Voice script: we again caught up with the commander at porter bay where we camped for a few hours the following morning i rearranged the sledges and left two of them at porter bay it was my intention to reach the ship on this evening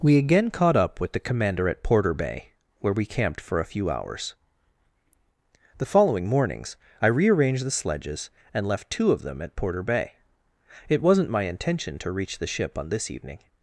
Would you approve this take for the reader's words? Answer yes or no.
no